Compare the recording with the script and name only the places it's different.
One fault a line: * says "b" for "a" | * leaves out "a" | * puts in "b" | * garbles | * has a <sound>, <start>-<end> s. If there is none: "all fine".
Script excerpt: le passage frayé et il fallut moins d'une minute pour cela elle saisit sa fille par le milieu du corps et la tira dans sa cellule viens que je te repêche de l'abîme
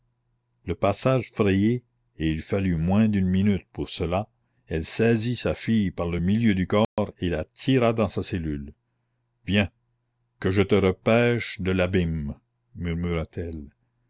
* has a dropout, 6.8-7.0 s